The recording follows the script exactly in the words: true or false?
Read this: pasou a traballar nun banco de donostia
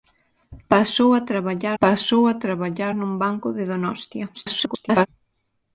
false